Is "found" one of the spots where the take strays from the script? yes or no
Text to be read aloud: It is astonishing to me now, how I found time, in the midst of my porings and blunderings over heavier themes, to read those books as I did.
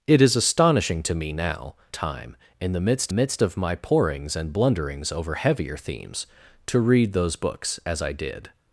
yes